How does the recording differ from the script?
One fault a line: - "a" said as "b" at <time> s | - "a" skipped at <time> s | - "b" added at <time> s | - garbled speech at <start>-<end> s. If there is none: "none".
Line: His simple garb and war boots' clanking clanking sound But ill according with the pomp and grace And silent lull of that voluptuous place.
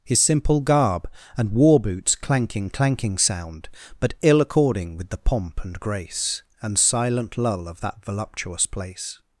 none